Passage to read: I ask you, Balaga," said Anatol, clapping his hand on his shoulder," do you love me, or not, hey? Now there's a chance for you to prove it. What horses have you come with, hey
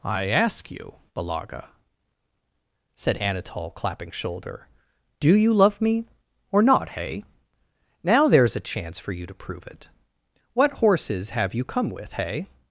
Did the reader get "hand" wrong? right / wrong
wrong